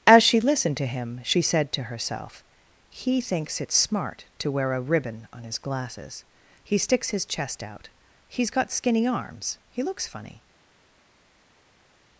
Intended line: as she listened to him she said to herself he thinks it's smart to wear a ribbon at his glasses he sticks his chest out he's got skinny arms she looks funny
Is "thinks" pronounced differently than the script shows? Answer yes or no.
no